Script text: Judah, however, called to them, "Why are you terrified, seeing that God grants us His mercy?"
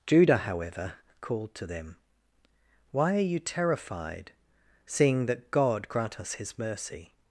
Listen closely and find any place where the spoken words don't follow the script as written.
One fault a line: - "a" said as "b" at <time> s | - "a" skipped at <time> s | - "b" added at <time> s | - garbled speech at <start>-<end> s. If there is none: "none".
- "grants" said as "grant" at 5.9 s